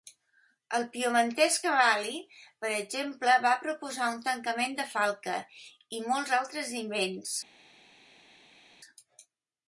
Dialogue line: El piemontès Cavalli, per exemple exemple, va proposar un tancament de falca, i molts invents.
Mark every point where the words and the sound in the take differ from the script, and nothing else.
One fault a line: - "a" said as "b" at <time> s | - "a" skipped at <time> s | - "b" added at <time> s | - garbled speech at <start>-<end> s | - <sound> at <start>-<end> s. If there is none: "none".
- "exemple" skipped at 3.3 s
- "altres" added at 6.4 s